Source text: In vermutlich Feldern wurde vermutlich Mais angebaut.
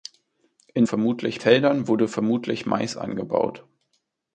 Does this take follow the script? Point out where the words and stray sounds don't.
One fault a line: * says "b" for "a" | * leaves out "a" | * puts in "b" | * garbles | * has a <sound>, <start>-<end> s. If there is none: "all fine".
all fine